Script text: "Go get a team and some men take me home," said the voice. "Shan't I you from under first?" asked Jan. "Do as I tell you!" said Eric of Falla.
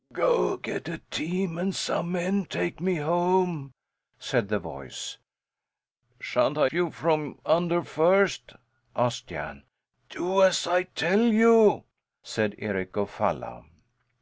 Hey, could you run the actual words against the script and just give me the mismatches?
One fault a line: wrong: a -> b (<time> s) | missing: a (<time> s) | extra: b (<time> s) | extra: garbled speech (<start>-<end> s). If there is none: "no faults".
no faults